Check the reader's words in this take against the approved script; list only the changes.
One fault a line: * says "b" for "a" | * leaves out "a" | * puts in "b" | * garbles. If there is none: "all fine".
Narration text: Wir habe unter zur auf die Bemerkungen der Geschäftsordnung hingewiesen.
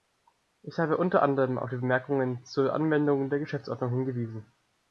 * says "Ich" for "Wir"
* says "anderem" for "zur"
* puts in "zur Anwendung"